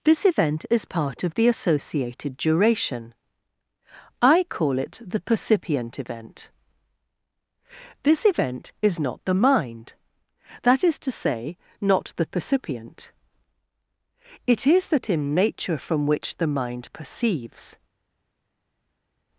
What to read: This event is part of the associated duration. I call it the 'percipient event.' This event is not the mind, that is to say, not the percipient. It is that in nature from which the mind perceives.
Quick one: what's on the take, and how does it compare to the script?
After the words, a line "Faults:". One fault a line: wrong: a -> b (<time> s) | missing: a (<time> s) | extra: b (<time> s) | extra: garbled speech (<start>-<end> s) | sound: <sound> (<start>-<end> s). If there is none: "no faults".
This event is part of the associated duration. I call it the 'percipient event.' This event is not the mind, that is to say, not the percipient. It is that in nature from which the mind perceives.
Faults:
no faults